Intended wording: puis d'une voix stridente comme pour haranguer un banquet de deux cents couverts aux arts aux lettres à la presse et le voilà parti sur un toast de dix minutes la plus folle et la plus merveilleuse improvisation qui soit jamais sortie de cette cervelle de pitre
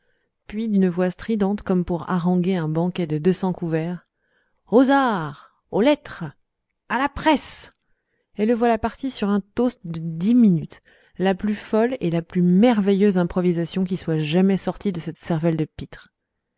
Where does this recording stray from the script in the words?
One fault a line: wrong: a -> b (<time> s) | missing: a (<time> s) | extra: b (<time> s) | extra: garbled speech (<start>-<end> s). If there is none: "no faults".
no faults